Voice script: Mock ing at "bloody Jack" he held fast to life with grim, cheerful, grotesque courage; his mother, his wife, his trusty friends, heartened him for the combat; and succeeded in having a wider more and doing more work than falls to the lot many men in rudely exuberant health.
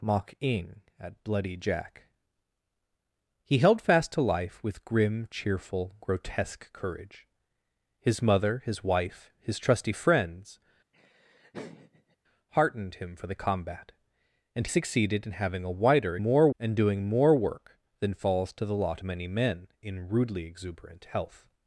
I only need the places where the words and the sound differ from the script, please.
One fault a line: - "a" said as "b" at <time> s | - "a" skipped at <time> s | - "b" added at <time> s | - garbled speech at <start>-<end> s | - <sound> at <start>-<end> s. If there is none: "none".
- laugh at 10.9-12.2 s